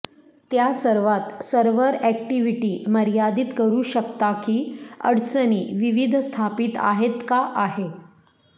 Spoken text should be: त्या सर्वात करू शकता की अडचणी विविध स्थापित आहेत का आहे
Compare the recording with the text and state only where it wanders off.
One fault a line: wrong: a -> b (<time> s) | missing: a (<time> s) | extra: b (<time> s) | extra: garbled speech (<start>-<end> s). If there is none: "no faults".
extra: सर्व्हर अॅक्टिव्हिटी मर्यादित (1.4 s)